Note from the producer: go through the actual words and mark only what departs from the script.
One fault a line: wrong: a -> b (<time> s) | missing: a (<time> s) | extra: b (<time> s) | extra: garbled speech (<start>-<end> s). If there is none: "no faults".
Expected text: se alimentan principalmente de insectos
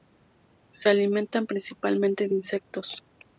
no faults